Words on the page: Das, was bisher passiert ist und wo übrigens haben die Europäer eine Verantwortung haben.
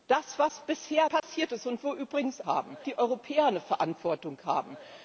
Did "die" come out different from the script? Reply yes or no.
no